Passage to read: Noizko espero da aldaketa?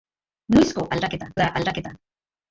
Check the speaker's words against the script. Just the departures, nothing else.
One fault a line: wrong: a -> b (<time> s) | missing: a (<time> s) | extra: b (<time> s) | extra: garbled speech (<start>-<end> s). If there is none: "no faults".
wrong: espero -> aldaketa (1.0 s)